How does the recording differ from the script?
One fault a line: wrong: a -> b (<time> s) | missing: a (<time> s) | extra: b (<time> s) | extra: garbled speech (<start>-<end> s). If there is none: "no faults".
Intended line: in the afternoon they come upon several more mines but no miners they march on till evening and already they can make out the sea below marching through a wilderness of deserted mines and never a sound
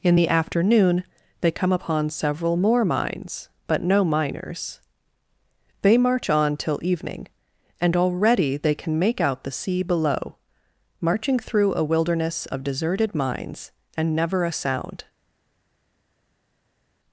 no faults